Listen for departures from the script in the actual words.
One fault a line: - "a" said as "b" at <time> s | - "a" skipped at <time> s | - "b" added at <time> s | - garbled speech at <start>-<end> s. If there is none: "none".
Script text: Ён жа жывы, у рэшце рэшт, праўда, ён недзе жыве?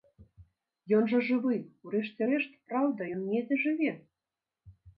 none